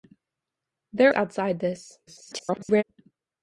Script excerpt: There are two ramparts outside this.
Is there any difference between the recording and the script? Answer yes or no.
yes